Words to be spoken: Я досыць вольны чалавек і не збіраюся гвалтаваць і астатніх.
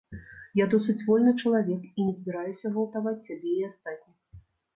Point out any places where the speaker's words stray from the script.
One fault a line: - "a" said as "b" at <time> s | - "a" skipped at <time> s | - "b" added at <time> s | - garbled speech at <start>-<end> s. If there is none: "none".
- "сябе" added at 3.3 s